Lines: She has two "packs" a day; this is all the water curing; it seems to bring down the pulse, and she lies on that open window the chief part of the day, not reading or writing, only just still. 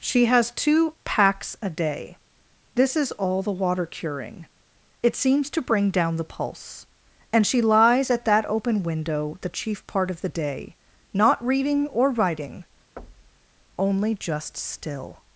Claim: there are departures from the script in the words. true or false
true